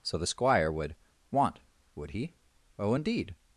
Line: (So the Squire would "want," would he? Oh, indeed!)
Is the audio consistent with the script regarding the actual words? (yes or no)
yes